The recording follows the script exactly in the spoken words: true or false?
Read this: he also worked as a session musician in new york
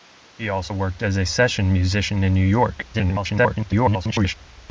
false